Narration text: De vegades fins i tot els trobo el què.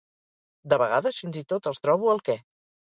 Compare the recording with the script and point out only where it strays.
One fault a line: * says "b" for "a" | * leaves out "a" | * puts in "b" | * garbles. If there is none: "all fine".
all fine